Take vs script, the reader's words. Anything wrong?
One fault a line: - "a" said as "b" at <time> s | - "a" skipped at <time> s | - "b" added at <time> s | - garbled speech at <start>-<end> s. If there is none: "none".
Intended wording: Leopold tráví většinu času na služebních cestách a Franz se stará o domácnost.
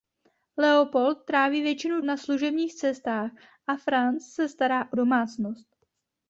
- "času" skipped at 2.0 s